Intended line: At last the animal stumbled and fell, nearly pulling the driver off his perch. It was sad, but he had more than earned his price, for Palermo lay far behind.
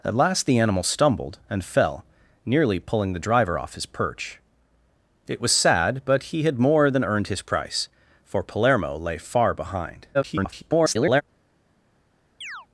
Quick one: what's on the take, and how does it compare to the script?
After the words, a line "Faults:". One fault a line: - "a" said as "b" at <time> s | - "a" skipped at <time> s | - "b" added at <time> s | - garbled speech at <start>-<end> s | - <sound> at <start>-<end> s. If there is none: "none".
At last the animal stumbled and fell, nearly pulling the driver off his perch. It was sad, but he had more than earned his price, for Palermo lay far behind. [garbled]
Faults:
- garbled speech at 10.1-11.2 s
- chirp at 12.4-12.7 s